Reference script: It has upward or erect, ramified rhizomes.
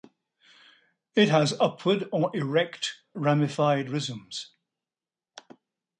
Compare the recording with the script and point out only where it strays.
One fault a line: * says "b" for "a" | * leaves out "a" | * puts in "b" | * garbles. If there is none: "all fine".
all fine